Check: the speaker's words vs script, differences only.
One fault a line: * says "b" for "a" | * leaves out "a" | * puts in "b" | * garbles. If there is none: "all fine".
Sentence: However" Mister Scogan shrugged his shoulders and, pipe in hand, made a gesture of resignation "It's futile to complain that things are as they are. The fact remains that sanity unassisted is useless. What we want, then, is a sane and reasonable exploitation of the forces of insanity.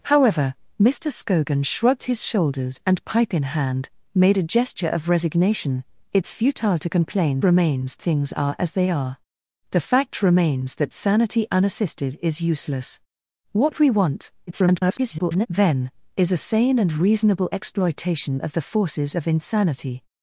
* says "remains" for "that"
* garbles